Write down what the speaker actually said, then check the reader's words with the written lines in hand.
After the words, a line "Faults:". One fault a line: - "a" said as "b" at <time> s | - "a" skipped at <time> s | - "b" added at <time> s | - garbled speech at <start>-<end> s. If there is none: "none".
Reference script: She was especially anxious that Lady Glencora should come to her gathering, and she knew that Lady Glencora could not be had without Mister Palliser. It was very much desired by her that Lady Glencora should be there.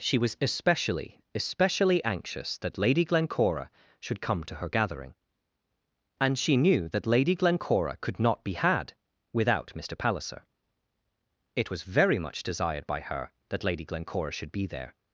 She was especially especially anxious that Lady Glencora should come to her gathering, and she knew that Lady Glencora could not be had without Mister Palliser. It was very much desired by her that Lady Glencora should be there.
Faults:
- "especially" added at 1.4 s